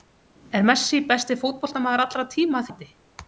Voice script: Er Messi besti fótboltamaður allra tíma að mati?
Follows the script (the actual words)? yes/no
yes